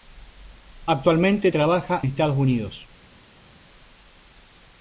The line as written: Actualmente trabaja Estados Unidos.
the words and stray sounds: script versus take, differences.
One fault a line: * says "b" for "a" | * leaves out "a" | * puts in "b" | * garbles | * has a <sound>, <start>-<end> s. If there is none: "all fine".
all fine